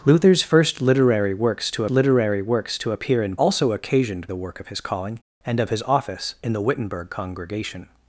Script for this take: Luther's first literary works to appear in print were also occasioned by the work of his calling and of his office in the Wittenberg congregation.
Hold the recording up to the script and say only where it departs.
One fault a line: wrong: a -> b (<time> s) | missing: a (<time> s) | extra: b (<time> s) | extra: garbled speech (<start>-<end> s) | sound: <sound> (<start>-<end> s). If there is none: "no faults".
extra: literary works to (1.9 s)
missing: print were (3.4 s)
missing: by (4.3 s)